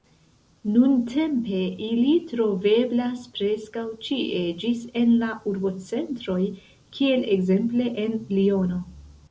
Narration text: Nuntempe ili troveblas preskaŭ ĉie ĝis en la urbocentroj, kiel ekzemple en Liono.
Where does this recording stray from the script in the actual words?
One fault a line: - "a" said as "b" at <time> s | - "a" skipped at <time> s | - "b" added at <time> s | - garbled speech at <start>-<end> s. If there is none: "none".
none